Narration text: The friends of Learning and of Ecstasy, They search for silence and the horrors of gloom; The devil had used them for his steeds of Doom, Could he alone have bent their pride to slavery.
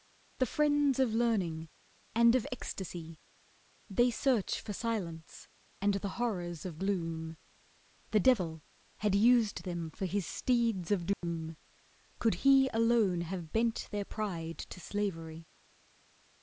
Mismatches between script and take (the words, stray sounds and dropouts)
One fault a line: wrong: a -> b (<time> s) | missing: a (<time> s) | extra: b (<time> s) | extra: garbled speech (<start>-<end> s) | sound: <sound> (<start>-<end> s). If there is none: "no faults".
sound: dropout (11.1-11.2 s)